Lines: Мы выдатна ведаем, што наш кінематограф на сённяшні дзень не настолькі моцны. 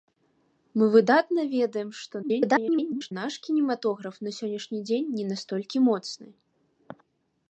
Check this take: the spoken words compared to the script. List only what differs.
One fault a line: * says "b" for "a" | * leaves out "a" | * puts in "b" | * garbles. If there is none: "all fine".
* garbles